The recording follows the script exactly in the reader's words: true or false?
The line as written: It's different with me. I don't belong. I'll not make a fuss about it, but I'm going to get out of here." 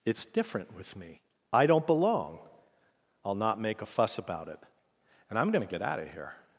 false